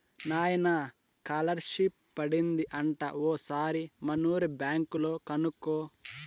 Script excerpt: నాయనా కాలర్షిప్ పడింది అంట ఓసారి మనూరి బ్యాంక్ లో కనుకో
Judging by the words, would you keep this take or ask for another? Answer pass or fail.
pass